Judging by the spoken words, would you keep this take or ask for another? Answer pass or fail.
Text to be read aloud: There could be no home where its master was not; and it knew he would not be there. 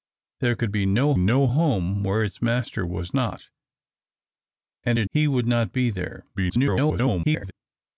fail